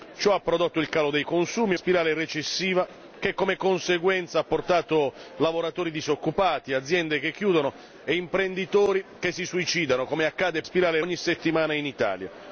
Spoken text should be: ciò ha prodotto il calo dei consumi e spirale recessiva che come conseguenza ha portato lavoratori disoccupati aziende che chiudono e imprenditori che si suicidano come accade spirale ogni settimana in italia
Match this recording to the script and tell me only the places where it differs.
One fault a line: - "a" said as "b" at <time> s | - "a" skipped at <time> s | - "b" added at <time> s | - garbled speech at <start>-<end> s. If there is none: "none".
none